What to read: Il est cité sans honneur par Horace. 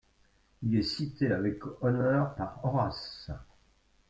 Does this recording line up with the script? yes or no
no